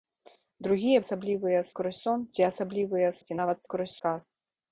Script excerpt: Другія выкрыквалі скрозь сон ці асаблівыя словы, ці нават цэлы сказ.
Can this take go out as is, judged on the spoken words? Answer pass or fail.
fail